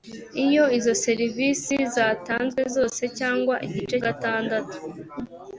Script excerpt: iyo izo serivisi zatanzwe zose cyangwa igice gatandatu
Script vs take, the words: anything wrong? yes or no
no